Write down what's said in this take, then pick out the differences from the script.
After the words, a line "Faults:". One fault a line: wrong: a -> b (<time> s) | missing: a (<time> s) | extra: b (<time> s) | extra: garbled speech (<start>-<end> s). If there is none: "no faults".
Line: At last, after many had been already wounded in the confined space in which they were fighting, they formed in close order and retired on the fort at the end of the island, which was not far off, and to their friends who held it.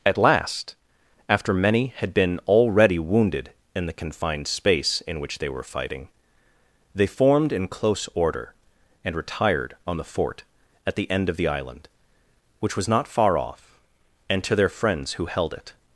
At last, after many had been already wounded in the confined space in which they were fighting, they formed in close order and retired on the fort at the end of the island, which was not far off, and to their friends who held it.
Faults:
no faults